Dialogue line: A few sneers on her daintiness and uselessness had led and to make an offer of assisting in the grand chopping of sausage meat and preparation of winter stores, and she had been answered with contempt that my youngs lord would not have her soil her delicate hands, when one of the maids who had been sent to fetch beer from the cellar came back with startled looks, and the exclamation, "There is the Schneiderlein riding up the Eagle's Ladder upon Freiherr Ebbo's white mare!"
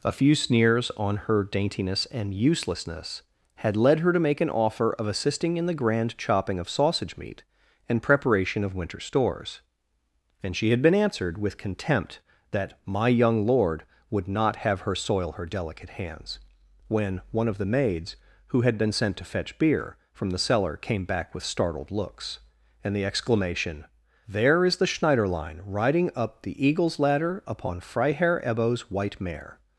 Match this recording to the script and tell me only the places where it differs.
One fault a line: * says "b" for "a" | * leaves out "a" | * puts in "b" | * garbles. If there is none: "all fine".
* says "her" for "and"
* says "young" for "youngs"